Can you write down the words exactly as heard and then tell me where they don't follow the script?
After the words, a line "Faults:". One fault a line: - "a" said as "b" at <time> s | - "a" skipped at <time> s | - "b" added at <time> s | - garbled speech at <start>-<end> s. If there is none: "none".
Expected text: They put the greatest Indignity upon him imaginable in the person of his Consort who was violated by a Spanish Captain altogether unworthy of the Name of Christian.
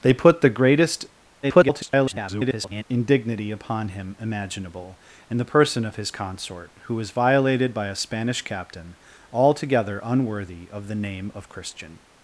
They put the greatest [garbled] Indignity upon him imaginable in the person of his Consort who was violated by a Spanish Captain altogether unworthy of the Name of Christian.
Faults:
- garbled speech at 1.4-2.8 s